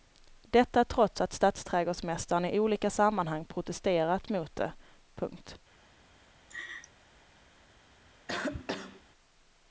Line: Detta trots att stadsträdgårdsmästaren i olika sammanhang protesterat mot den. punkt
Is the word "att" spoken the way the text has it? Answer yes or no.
yes